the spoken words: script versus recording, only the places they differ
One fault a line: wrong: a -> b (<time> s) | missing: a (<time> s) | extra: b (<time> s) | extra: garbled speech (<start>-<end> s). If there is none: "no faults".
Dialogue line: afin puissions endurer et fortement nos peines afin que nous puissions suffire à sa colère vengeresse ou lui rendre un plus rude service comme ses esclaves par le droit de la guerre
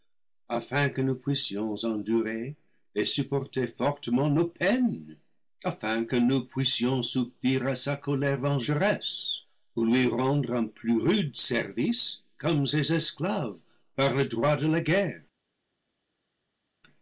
extra: que nous (0.9 s)
extra: supporter (3.0 s)